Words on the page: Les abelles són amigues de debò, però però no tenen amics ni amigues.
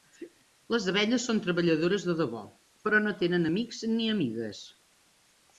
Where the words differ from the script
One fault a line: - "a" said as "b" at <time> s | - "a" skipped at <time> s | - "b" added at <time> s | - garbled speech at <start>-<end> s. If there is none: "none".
- "amigues" said as "treballadores" at 1.5 s
- "però" skipped at 3.0 s